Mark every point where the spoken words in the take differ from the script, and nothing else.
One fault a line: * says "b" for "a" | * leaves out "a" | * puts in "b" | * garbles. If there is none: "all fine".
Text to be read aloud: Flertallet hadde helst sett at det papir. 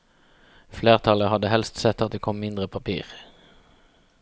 * puts in "kom mindre"